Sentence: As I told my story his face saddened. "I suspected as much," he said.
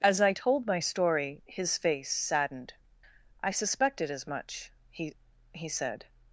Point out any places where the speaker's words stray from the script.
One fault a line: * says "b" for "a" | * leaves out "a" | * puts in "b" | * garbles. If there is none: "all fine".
* puts in "he"